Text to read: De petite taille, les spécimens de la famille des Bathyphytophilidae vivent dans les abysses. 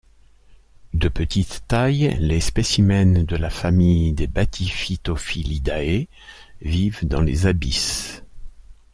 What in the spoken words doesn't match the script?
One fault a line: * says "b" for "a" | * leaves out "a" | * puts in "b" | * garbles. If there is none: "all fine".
all fine